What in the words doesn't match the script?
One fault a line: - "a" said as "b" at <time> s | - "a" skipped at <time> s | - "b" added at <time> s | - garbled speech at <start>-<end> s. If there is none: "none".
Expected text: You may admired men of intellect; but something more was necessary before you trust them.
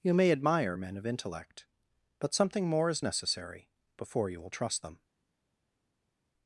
- "admired" said as "admire" at 0.3 s
- "was" said as "is" at 2.9 s
- "will" added at 4.4 s